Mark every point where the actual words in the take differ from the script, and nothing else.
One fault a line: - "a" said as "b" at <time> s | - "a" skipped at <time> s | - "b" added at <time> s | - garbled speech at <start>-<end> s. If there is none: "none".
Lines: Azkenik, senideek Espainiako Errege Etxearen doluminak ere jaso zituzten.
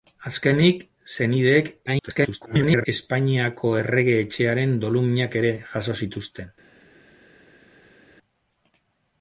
- garbled speech at 1.9-2.9 s